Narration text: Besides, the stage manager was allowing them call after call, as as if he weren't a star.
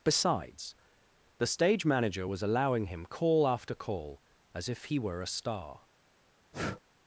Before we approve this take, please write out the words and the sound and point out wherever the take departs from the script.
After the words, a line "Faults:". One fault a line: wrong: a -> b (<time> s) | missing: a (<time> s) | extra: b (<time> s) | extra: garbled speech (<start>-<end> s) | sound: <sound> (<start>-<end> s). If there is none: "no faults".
Besides, the stage manager was allowing him call after call, as if he were a star.
Faults:
wrong: them -> him (2.9 s)
missing: as (4.7 s)
wrong: weren't -> were (5.0 s)
sound: breath (6.5-6.8 s)